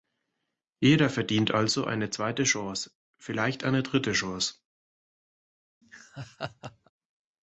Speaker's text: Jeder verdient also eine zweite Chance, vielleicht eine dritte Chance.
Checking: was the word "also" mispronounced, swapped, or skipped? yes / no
no